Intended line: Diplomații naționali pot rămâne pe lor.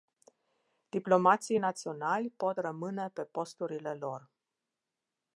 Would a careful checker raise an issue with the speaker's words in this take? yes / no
yes